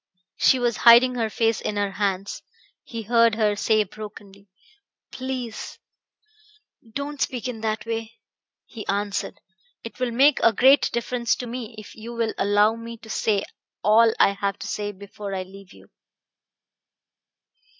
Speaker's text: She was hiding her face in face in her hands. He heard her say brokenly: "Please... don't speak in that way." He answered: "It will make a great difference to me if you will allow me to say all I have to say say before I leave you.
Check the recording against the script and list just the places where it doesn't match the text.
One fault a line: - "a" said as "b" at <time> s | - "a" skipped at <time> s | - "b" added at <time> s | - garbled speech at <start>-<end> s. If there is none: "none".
- "face in" skipped at 1.8 s
- "say" skipped at 14.9 s